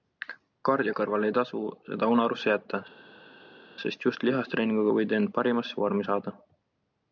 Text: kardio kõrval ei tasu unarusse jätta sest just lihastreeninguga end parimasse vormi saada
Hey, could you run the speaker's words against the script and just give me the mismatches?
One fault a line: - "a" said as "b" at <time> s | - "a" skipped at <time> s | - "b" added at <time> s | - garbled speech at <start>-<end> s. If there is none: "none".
- "seda" added at 1.9 s
- "võid" added at 5.0 s